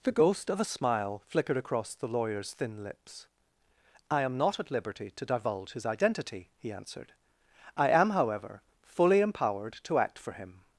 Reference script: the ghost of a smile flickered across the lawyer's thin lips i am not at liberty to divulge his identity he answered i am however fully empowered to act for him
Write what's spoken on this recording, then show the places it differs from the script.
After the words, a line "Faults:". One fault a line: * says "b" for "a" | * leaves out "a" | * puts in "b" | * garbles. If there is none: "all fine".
the ghost of a smile flickered across the lawyer's thin lips i am not at liberty to divulge his identity he answered i am however fully empowered to act for him
Faults:
all fine